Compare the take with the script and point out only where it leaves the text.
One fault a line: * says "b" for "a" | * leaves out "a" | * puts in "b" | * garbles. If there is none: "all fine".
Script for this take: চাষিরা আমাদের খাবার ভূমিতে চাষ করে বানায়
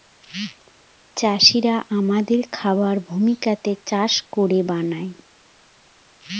all fine